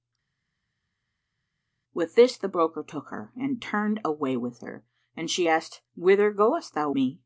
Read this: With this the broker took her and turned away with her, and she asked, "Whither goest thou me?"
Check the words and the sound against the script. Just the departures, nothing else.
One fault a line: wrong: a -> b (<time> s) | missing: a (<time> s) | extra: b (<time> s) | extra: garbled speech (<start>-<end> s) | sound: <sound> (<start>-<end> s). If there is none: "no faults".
no faults